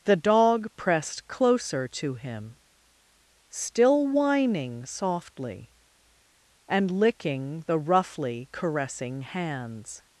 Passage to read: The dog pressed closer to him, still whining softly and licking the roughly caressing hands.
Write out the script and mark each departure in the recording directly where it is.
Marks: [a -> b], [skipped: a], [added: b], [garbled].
The dog pressed closer to him, still whining softly and licking the roughly caressing hands.